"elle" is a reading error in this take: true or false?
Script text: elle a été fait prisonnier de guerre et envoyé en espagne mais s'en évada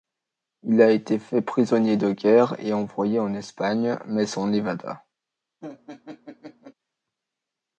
true